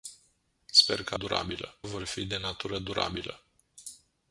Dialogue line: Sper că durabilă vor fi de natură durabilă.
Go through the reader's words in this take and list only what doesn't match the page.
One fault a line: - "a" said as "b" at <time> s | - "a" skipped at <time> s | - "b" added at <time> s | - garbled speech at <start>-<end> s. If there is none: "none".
none